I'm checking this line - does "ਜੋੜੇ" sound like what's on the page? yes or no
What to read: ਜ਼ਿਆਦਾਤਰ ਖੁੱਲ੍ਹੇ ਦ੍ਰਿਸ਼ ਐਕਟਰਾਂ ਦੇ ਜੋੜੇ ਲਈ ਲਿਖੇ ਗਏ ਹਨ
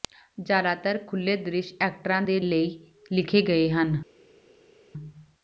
no